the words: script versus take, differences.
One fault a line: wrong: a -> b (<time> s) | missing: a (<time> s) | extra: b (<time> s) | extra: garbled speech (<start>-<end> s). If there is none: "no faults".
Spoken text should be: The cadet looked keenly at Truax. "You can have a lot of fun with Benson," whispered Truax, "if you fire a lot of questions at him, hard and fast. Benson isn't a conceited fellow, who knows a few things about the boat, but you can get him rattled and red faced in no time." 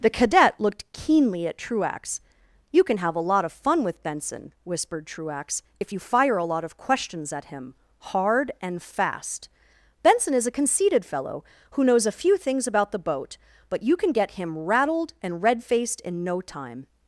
wrong: isn't -> is (10.3 s)